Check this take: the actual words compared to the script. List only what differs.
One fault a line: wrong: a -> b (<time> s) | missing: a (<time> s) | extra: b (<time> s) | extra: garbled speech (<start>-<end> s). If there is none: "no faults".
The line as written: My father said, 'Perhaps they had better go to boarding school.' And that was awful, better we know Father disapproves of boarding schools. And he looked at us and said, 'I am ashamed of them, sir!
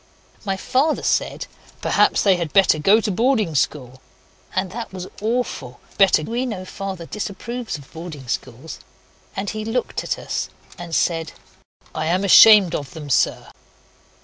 no faults